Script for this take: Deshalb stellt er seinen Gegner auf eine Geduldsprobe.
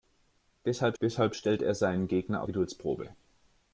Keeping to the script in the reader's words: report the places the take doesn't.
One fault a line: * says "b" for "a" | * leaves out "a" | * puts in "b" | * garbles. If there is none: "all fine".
* puts in "deshalb"
* leaves out "auf eine"